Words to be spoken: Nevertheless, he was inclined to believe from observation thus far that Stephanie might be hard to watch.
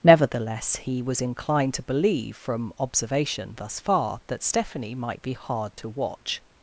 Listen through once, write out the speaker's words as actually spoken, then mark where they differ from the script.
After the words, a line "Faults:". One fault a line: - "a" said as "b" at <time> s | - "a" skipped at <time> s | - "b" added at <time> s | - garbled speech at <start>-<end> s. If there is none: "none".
Nevertheless, he was inclined to believe from observation thus far that Stephanie might be hard to watch.
Faults:
none